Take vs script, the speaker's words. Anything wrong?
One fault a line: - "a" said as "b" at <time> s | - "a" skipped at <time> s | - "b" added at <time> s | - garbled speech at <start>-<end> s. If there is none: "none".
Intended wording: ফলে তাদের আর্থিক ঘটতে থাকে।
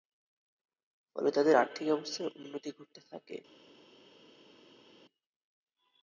- "অবস্থার উন্নতি" added at 1.9 s